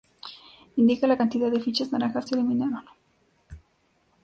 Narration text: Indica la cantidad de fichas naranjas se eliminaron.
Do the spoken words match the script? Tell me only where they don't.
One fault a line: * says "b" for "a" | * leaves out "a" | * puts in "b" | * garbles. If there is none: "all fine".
all fine